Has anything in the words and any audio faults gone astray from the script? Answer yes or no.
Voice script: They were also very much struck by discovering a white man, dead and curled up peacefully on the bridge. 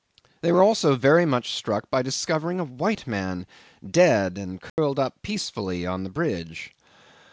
yes